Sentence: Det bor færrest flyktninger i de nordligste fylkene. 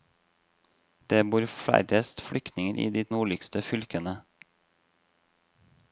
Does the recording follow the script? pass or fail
pass